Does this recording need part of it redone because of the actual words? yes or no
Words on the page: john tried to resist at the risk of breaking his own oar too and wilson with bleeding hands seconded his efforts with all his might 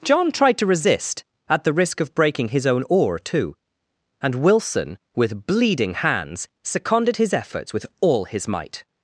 no